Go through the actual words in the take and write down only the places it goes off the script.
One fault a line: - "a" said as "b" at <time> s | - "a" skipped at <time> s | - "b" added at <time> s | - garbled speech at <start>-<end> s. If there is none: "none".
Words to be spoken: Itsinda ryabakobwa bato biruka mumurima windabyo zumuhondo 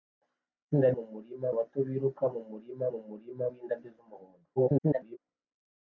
- "ryabakobwa" said as "mumurima" at 1.0 s
- "mumurima" added at 2.9 s
- garbled speech at 4.6-5.2 s